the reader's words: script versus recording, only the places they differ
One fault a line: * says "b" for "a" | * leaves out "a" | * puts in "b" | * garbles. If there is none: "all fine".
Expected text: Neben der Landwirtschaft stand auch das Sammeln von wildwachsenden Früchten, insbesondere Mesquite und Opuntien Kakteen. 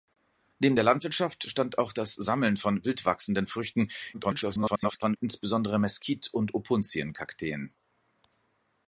* garbles